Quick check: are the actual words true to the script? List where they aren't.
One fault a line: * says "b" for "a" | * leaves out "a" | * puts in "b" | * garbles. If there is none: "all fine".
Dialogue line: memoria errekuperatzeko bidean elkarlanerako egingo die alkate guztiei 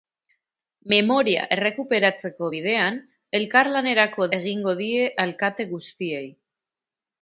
all fine